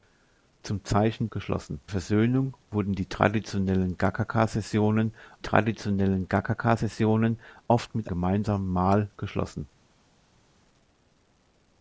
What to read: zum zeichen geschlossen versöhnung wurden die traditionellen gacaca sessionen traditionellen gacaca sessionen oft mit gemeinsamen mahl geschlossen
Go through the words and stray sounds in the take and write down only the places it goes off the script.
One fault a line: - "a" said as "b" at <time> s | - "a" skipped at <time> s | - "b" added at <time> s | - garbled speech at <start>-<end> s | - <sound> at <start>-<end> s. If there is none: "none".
none